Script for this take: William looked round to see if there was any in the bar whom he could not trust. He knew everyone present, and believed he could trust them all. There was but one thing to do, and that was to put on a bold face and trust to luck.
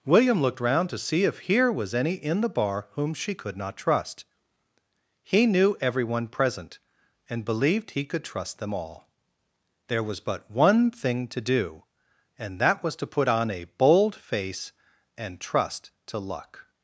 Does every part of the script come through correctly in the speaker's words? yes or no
no